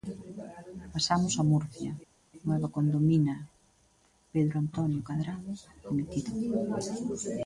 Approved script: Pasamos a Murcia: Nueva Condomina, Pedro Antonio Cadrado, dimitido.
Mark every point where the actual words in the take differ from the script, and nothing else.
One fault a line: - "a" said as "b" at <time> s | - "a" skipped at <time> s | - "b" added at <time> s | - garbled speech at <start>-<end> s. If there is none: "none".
none